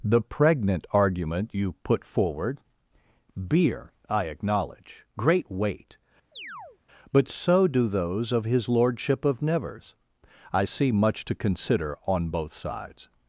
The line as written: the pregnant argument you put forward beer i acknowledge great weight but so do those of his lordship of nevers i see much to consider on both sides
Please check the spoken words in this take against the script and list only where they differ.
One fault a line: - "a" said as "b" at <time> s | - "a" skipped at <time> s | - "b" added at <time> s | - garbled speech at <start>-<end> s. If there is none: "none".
none